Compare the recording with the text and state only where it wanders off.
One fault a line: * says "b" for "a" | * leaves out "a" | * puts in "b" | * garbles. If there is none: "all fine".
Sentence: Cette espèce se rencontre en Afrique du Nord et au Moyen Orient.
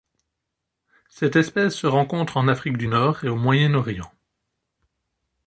all fine